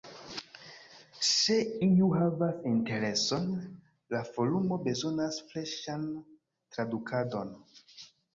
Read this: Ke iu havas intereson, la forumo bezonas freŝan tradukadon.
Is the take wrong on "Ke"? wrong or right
wrong